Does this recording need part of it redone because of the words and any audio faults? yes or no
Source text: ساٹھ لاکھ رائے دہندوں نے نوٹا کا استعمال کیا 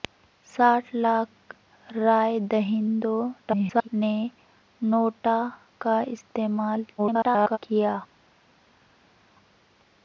yes